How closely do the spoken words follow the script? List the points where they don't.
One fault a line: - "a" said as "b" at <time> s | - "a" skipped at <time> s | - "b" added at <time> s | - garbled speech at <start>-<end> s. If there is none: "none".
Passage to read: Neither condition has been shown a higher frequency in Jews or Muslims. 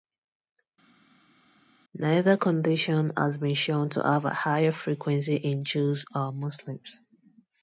- "to have" added at 3.9 s